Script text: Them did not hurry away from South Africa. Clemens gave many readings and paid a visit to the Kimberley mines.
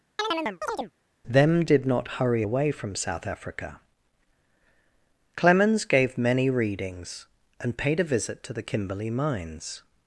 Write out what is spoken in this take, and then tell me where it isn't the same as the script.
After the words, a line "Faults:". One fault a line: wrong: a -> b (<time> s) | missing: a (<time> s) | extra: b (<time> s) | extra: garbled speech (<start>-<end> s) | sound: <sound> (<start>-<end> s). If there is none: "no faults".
Them did not hurry away from South Africa. Clemens gave many readings and paid a visit to the Kimberley mines.
Faults:
sound: chirp (0.2-0.9 s)